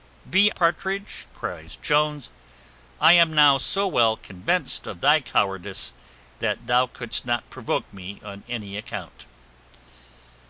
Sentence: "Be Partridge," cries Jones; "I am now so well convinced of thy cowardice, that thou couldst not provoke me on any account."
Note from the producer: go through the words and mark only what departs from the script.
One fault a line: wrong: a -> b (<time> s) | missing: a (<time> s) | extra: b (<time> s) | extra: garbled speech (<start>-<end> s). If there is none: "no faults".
no faults